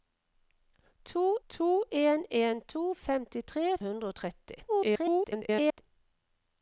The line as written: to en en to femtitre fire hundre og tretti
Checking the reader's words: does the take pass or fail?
fail